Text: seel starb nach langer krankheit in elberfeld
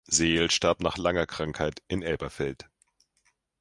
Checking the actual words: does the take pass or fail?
pass